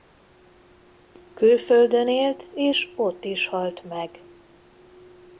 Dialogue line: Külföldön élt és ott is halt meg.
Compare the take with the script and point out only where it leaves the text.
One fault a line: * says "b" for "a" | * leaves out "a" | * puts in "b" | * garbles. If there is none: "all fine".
all fine